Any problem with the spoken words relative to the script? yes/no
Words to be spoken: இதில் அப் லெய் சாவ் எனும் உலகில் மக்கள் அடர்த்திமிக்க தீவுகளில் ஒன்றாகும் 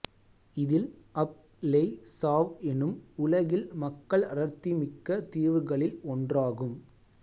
no